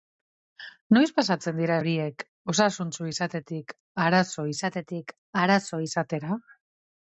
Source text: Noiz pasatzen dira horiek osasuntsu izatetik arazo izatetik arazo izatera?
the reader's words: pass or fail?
pass